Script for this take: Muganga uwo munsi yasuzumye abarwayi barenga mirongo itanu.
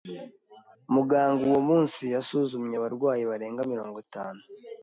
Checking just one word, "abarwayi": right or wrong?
right